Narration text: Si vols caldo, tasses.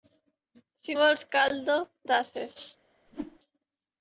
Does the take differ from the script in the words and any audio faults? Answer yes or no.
yes